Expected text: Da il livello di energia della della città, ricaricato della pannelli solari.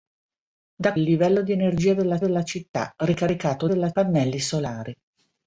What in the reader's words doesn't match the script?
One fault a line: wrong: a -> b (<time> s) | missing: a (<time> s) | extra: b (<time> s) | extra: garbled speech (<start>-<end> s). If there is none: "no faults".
no faults